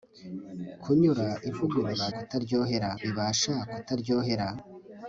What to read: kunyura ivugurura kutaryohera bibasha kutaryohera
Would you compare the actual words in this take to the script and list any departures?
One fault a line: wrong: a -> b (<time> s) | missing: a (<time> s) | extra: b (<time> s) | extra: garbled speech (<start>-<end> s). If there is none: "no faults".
no faults